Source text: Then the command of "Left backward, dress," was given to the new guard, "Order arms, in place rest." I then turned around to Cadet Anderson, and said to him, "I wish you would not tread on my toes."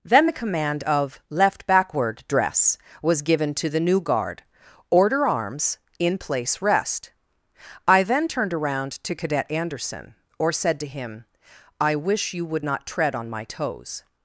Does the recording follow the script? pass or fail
fail